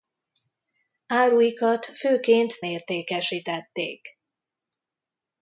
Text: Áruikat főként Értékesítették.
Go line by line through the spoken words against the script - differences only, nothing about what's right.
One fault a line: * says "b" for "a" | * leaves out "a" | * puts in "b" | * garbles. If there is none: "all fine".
all fine